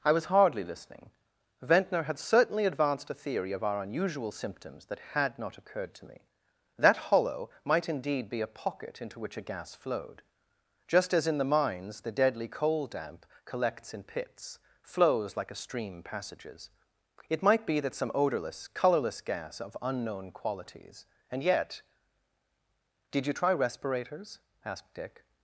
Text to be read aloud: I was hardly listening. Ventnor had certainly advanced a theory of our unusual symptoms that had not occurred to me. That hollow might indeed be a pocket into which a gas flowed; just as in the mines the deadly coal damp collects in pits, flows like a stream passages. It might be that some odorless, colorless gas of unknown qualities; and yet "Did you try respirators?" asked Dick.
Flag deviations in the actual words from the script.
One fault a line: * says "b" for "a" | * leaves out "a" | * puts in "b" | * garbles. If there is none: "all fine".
all fine